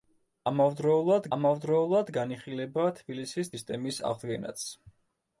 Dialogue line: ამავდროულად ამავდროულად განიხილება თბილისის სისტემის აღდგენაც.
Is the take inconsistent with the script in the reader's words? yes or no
no